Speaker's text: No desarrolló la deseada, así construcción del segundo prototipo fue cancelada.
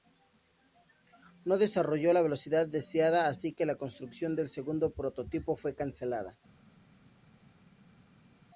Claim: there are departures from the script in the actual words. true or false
true